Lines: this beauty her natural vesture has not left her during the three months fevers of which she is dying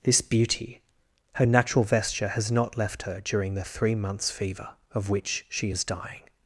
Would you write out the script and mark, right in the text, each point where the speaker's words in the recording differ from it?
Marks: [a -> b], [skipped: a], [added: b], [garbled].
this beauty her natural vesture has not left her during the three months [fevers -> fever] of which she is dying